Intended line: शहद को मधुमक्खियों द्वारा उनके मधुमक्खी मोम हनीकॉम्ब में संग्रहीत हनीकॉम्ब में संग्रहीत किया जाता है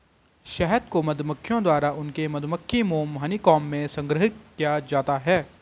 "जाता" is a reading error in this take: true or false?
false